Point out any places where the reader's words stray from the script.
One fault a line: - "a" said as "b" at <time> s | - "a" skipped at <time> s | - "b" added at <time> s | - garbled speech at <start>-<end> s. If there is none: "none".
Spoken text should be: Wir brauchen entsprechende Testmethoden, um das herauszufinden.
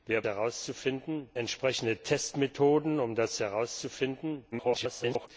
- "brauchen" said as "herauszufinden" at 0.2 s
- garbled speech at 4.5-5.3 s